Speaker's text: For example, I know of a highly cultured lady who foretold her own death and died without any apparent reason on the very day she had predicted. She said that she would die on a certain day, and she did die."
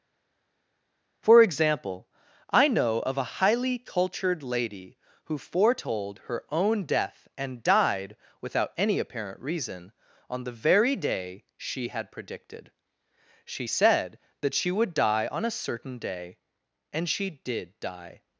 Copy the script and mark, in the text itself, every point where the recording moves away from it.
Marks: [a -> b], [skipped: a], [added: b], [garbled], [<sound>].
For example, I know of a highly cultured lady who foretold her own death and died without any apparent reason on the very day she had predicted. She said that she would die on a certain day, and she did die."